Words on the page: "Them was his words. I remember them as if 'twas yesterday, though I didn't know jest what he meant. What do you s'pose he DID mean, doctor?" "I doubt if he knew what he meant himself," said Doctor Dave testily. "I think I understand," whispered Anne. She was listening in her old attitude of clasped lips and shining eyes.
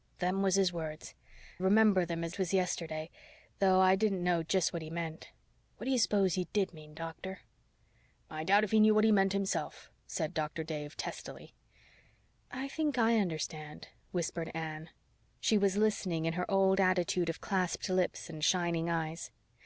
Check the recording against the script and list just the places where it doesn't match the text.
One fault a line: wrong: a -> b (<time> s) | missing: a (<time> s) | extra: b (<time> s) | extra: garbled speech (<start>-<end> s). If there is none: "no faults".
missing: I (1.1 s)
missing: if (2.3 s)